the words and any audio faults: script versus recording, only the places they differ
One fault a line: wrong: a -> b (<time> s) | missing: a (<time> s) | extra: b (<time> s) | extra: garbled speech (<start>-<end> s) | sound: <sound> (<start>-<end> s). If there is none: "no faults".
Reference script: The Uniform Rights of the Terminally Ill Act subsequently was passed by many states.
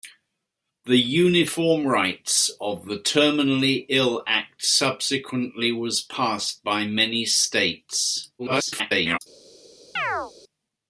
extra: garbled speech (8.4-9.2 s)
sound: chirp (10.0-10.3 s)